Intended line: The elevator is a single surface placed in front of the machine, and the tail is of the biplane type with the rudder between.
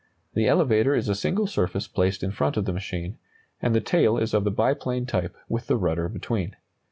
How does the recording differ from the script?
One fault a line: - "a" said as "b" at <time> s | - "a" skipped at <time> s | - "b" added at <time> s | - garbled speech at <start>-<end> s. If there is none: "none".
none